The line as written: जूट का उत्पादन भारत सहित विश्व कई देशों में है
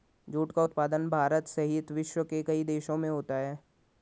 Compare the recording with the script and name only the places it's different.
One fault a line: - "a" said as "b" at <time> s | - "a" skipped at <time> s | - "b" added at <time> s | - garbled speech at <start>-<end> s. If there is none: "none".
- "के" added at 2.2 s
- "होता" added at 3.1 s